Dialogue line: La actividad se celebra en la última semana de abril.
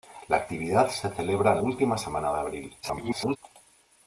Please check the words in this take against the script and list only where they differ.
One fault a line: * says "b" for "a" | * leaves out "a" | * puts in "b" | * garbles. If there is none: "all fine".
* leaves out "la"
* garbles